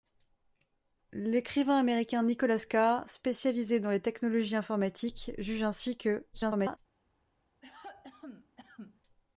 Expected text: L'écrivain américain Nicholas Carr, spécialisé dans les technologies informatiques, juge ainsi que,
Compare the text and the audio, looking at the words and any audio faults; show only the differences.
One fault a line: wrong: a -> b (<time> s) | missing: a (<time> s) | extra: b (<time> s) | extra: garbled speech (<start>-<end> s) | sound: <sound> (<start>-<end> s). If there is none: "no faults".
extra: garbled speech (6.3-6.8 s)
sound: cough (7.6-9.0 s)